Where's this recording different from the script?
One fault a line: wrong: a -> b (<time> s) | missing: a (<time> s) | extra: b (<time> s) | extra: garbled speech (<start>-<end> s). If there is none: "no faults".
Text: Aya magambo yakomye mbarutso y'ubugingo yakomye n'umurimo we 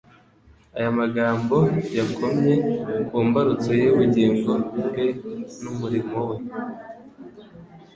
extra: ku (3.1 s)
wrong: yakomye -> bwe (4.8 s)